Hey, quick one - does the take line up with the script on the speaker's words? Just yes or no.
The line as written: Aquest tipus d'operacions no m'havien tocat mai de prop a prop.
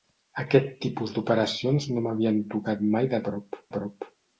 yes